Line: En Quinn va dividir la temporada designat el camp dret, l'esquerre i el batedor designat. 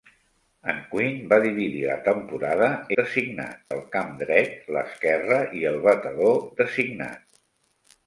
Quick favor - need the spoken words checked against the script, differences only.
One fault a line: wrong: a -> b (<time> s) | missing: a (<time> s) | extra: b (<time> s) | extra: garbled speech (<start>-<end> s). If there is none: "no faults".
no faults